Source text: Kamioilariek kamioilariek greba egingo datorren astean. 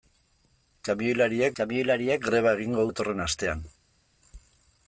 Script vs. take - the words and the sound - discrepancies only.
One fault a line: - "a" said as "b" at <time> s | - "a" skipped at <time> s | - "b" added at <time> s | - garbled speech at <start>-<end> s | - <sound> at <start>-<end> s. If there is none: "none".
none